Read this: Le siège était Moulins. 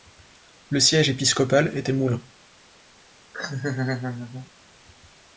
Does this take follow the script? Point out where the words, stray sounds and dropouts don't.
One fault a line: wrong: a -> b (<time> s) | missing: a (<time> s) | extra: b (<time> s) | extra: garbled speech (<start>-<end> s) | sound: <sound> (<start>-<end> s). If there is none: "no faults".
extra: épiscopal (1.1 s)
sound: laugh (3.3-4.5 s)